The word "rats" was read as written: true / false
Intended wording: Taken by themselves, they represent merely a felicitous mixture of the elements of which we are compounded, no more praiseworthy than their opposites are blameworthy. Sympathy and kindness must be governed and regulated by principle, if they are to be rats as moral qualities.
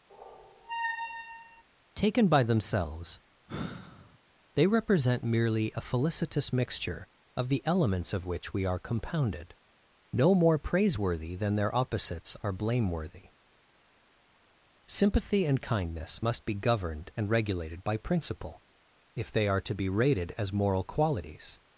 false